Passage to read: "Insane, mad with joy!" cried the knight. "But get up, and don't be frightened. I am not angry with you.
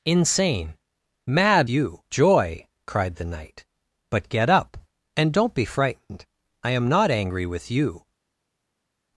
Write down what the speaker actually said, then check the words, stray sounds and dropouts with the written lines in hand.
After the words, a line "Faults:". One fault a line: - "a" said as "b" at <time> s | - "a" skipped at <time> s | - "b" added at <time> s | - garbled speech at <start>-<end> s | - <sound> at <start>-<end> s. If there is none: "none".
"Insane, mad you joy!" cried the knight. "But get up, and don't be frightened. I am not angry with you.
Faults:
- "with" said as "you" at 1.7 s